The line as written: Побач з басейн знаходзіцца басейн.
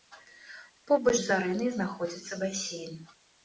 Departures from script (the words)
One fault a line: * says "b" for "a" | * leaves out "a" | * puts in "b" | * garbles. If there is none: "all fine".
* says "арэнай" for "басейн"